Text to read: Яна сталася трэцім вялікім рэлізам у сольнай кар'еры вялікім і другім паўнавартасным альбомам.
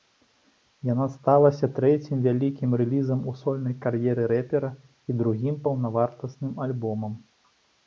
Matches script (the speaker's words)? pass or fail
fail